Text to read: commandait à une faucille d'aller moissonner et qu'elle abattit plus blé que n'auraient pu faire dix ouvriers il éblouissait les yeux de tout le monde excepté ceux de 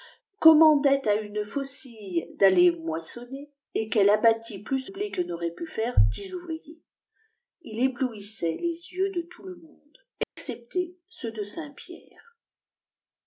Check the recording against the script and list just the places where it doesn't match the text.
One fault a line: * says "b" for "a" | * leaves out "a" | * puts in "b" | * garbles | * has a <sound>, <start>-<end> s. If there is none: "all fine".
* has a dropout, 10.2-10.4 s